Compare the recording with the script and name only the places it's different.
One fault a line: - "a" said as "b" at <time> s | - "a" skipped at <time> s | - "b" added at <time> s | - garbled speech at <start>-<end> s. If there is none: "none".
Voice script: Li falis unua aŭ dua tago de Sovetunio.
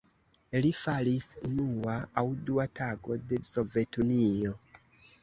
none